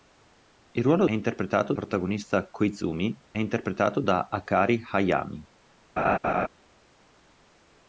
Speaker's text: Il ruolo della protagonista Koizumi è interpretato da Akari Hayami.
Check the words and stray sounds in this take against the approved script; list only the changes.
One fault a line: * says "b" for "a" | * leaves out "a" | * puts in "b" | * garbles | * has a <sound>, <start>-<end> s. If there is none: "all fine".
* says "interpretato" for "della"
* has a laugh, 6.0-6.5 s